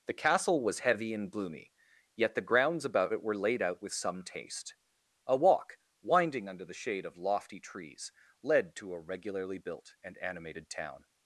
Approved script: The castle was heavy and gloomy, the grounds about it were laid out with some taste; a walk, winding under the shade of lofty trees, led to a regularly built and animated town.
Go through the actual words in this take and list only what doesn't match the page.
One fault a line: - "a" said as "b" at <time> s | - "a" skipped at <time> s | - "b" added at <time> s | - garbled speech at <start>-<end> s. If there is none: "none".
- "yet" added at 2.1 s